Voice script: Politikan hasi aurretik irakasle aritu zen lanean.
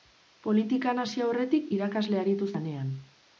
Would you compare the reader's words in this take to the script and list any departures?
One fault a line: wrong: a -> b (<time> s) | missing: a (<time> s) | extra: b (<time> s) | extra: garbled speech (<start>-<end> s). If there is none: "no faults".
missing: zen (2.5 s)